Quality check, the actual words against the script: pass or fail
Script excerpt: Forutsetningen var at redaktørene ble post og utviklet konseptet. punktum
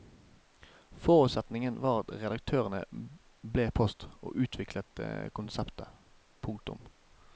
pass